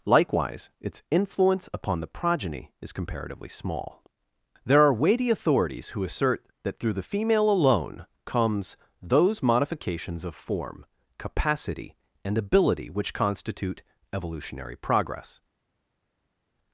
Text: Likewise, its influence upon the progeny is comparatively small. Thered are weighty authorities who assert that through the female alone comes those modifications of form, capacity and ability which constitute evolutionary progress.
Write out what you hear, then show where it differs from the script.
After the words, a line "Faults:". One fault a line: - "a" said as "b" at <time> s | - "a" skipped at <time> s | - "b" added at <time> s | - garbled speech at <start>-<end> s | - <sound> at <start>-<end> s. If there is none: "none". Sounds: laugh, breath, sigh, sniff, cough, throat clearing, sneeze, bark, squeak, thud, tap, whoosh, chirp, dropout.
Likewise, its influence upon the progeny is comparatively small. There are weighty authorities who assert that through the female alone comes those modifications of form, capacity and ability which constitute evolutionary progress.
Faults:
- "Thered" said as "There" at 4.6 s